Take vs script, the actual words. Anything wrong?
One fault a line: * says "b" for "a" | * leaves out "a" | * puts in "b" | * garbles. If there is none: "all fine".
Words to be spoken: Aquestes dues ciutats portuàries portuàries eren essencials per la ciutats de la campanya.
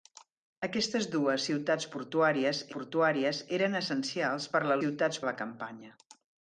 all fine